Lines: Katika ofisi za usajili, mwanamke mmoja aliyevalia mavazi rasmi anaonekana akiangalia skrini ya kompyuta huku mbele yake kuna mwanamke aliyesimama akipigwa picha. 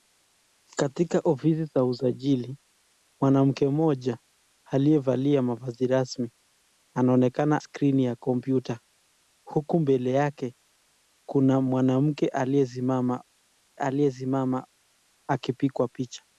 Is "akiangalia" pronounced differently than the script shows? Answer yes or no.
yes